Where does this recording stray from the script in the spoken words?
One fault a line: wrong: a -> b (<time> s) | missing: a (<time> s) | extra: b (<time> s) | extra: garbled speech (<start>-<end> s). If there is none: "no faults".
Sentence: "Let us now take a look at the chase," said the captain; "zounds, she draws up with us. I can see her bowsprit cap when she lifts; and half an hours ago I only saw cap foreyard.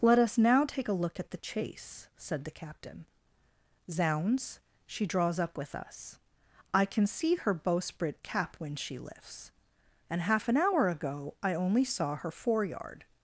wrong: hours -> hour (10.6 s)
wrong: cap -> her (12.2 s)